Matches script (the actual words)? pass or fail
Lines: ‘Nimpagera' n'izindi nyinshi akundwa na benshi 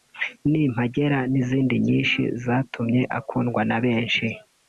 fail